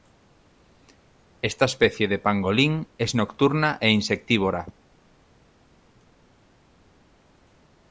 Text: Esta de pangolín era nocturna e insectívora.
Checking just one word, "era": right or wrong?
wrong